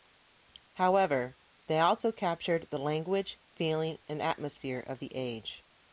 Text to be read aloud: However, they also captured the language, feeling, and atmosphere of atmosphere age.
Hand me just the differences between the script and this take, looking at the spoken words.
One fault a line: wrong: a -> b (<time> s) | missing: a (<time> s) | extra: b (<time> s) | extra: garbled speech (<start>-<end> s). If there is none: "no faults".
wrong: atmosphere -> the (5.0 s)